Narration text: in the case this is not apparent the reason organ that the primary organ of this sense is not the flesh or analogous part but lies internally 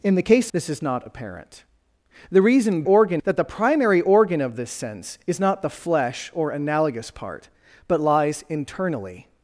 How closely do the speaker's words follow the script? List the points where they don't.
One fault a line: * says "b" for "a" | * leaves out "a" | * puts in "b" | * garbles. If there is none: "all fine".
all fine